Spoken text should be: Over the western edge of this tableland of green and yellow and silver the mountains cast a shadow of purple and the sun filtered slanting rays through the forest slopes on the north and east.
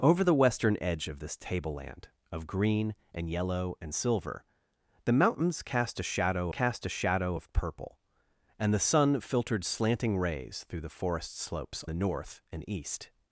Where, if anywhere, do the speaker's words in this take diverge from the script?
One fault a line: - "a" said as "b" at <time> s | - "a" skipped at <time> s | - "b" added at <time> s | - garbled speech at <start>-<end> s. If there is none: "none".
- "cast a shadow" added at 6.5 s
- "on" skipped at 11.8 s